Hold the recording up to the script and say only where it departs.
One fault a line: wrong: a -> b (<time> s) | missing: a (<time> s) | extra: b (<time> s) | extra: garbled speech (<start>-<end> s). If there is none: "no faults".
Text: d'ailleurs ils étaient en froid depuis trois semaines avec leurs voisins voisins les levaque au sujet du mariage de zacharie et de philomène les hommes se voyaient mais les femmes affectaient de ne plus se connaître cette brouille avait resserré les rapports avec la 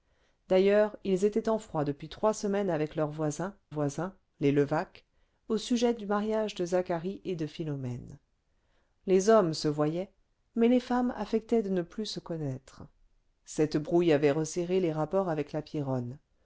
no faults